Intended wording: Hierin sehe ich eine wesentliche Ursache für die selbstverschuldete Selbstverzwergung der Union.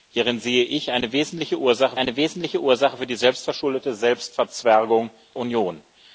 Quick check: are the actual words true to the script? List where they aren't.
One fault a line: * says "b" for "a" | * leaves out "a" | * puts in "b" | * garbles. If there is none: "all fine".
* puts in "eine wesentliche Ursache"
* leaves out "der"